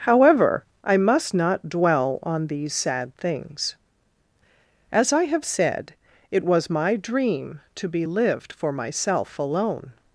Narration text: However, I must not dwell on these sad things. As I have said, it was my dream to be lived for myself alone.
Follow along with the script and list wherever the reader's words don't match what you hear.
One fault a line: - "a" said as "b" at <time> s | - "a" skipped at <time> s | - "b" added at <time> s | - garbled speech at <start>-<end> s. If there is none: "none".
none